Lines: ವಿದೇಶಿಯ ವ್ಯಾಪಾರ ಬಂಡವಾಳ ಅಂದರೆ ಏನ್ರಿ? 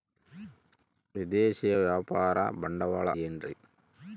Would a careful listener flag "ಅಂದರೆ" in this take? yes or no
yes